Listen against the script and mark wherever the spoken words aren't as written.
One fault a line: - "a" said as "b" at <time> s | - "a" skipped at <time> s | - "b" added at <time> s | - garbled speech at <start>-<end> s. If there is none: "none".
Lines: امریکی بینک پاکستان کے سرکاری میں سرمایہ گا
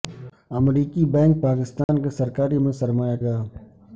none